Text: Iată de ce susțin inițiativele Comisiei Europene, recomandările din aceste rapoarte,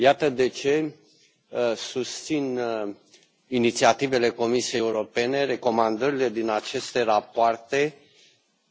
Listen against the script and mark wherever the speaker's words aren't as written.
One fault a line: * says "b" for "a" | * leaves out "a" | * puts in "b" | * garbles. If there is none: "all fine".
all fine